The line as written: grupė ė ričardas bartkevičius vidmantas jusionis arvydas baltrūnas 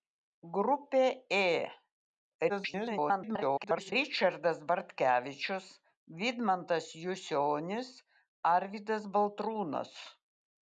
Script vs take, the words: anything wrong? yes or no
yes